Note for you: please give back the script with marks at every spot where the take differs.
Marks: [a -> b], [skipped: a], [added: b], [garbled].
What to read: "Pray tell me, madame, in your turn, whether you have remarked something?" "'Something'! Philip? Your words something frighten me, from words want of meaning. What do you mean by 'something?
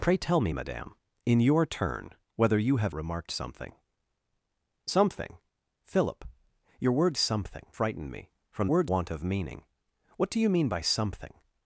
"Pray tell me, madame, in your turn, whether you have remarked something?" "'Something'! Philip? Your words something frighten me, from words want of meaning. What do you mean by 'something?